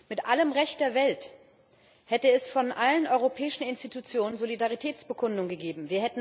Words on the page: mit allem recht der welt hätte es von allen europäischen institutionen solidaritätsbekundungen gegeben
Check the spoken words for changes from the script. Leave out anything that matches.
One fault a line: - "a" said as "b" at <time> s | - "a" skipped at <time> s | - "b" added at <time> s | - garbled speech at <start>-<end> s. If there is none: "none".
none